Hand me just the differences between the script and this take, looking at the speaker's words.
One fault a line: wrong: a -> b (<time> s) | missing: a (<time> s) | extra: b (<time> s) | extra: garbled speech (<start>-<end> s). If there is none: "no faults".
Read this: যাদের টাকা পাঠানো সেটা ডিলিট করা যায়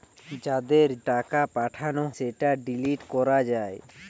no faults